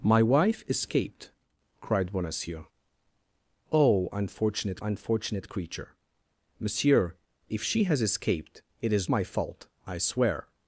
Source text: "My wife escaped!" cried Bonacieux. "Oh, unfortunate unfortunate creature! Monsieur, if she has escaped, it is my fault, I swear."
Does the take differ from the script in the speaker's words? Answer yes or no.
no